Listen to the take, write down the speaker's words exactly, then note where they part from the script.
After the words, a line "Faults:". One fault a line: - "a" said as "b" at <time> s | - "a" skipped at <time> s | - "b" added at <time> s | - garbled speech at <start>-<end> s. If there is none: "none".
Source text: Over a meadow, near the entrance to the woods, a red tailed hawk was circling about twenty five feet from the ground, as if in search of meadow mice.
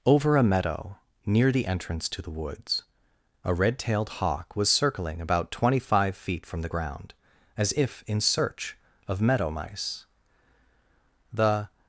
Over a meadow, near the entrance to the woods, a red tailed hawk was circling about twenty five feet from the ground, as if in search of meadow mice. The
Faults:
- "The" added at 11.3 s